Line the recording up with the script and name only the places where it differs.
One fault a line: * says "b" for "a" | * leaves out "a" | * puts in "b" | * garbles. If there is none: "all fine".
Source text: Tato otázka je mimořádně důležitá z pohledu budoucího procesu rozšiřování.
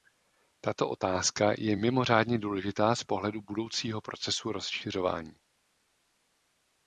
all fine